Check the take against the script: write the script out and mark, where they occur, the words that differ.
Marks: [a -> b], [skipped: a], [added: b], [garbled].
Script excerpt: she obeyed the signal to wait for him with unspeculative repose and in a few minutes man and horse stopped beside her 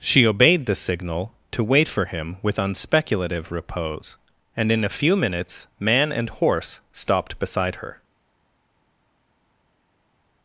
she obeyed the signal to wait for him with unspeculative repose and in a few minutes man and horse stopped beside her